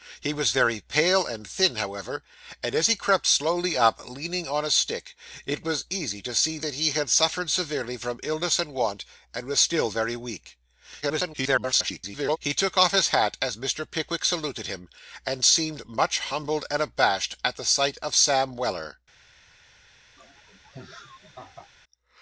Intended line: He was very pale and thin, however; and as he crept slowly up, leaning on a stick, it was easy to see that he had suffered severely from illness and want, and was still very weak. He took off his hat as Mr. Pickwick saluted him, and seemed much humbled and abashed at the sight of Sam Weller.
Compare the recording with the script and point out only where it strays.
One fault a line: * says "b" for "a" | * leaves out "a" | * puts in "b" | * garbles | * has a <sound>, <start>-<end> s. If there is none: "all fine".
* garbles
* has a laugh, 20.2-21.7 s